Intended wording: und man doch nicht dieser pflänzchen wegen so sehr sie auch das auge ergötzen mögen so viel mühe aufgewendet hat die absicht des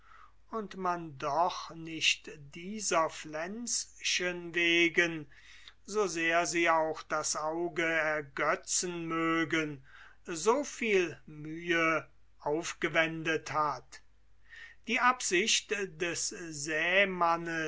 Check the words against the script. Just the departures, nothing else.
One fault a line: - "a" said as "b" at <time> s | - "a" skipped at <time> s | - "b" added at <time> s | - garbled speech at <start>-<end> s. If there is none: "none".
none